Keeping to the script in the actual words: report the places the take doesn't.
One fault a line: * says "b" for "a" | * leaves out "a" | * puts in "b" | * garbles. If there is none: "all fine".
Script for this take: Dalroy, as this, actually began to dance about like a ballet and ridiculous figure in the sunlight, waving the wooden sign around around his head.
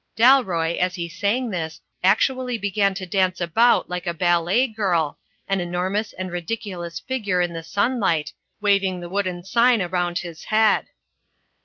* puts in "he sang"
* puts in "girl an enormous"
* leaves out "around"